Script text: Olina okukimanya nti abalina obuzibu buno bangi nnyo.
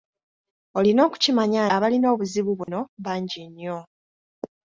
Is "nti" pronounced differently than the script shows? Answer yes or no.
yes